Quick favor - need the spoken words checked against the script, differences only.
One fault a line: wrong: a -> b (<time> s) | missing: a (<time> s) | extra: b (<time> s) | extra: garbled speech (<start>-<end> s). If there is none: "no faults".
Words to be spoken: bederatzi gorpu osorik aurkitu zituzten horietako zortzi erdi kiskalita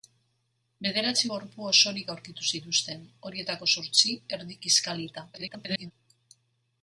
extra: garbled speech (5.3-5.9 s)